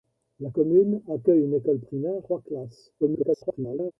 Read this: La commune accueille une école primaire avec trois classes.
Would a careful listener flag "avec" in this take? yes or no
yes